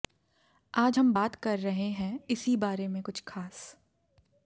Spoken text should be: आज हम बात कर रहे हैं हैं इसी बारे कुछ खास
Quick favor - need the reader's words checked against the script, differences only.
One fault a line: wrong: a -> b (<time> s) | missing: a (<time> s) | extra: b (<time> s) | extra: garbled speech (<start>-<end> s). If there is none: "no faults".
missing: हैं (2.2 s)
extra: में (2.9 s)